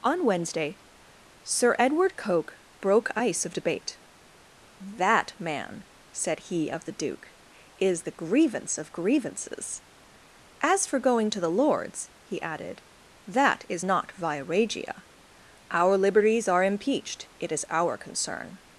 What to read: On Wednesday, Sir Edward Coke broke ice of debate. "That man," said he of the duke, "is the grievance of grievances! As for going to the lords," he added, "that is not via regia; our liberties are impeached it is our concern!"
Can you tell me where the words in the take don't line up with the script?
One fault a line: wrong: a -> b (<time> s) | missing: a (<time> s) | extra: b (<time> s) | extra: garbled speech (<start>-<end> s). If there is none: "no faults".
no faults